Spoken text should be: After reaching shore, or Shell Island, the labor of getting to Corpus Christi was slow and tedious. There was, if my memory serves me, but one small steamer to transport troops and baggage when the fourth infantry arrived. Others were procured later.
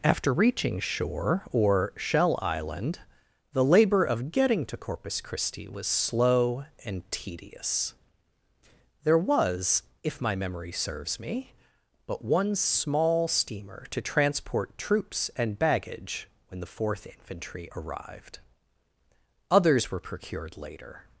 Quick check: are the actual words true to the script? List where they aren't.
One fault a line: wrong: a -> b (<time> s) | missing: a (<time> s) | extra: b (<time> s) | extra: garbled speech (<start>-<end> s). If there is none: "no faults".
no faults